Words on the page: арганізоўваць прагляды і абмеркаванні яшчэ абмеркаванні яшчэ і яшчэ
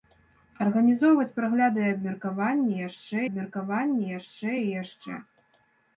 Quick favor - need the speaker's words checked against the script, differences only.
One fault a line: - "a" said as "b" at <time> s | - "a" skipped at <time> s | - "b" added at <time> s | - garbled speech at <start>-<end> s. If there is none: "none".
none